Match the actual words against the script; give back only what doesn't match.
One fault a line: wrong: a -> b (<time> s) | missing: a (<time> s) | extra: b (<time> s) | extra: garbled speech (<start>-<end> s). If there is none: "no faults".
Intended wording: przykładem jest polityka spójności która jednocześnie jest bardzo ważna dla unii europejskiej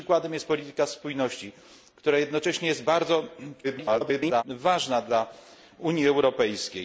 extra: garbled speech (3.6-4.4 s)